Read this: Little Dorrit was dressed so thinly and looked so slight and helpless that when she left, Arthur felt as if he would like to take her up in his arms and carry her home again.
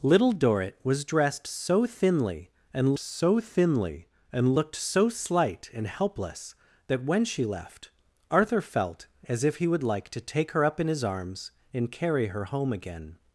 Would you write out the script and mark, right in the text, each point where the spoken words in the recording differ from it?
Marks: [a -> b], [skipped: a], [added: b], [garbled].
Little Dorrit was dressed so thinly and [added: so thinly and] looked so slight and helpless that when she left, Arthur felt as if he would like to take her up in his arms and carry her home again.